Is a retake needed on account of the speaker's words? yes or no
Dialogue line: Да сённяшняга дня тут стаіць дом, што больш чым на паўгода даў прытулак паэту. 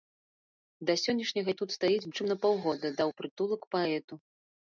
yes